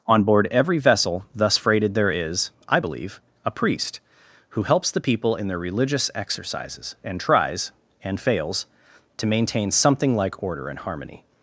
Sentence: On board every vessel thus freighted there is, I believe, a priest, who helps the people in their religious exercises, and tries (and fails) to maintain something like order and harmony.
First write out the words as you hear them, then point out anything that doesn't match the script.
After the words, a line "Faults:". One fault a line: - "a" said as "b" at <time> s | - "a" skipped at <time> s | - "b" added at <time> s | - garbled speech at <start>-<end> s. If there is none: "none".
On board every vessel thus freighted there is, I believe, a priest, who helps the people in their religious exercises, and tries (and fails) to maintain something like order and harmony.
Faults:
none